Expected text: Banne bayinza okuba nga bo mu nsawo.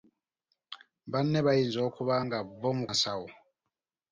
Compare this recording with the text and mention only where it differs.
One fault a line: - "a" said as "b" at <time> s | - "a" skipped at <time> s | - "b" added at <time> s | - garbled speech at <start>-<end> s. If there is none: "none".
none